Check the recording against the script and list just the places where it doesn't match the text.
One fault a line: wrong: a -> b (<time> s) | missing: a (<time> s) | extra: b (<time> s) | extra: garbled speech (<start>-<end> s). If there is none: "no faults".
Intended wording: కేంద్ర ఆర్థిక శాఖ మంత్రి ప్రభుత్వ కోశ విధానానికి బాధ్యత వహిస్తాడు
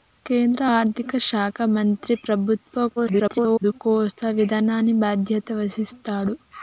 extra: garbled speech (3.0-3.8 s)